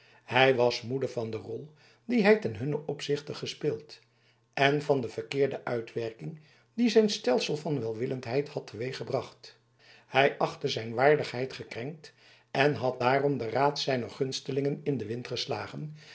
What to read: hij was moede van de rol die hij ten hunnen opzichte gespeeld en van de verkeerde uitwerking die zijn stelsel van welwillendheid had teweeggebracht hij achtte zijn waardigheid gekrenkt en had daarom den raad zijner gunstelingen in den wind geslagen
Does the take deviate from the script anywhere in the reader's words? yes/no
no